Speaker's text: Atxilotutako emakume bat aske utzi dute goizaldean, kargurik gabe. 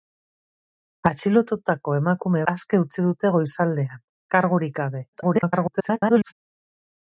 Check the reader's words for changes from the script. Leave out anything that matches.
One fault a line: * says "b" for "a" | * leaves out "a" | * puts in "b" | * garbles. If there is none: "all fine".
* leaves out "bat"
* garbles